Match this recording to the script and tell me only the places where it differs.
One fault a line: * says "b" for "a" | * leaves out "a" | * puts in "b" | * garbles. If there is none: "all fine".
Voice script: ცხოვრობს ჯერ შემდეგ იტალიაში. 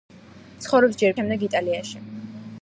all fine